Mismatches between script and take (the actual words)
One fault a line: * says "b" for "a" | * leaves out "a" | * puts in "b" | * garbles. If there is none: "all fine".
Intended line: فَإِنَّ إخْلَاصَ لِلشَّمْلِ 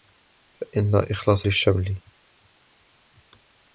all fine